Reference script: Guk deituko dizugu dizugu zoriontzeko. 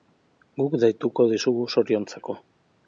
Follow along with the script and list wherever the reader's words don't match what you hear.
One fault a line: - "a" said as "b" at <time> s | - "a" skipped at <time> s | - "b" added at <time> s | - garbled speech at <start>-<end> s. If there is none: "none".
- "dizugu" skipped at 1.7 s